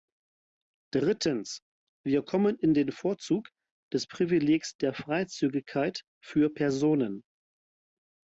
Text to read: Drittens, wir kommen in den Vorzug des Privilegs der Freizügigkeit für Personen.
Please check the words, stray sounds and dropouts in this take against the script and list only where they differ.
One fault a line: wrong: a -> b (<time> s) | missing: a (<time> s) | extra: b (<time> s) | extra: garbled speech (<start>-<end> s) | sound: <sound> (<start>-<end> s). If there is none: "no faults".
no faults